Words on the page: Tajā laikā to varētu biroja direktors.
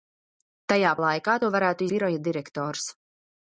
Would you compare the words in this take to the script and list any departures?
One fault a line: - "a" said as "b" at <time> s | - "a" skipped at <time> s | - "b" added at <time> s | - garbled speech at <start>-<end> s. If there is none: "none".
none